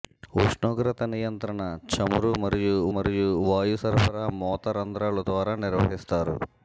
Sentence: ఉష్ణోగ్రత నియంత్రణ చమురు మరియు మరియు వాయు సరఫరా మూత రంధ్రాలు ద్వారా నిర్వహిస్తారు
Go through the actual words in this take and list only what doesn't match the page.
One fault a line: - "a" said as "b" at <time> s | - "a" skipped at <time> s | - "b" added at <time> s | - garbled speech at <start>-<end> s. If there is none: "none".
none